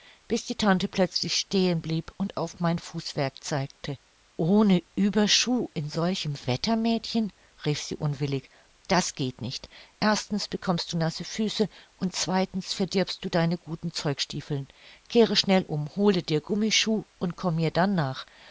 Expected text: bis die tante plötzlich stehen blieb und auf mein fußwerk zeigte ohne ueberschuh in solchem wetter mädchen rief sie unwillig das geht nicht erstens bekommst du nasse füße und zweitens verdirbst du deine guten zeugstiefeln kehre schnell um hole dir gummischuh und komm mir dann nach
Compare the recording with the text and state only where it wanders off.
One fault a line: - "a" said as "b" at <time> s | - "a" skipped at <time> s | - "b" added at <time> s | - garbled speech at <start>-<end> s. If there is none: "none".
none